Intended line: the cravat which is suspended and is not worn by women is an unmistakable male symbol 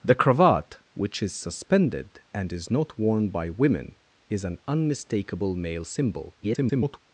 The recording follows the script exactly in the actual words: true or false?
false